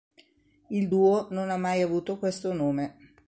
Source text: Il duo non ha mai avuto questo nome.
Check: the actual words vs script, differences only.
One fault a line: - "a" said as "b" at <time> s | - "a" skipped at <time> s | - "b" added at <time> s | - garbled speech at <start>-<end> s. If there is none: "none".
none